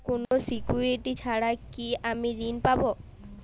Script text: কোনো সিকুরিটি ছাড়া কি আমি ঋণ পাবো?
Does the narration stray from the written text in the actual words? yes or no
no